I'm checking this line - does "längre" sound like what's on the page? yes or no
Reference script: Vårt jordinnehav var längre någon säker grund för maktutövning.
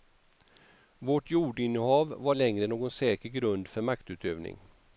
yes